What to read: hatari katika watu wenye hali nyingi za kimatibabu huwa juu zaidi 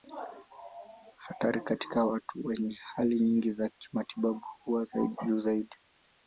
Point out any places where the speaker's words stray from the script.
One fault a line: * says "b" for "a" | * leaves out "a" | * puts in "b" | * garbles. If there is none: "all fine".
all fine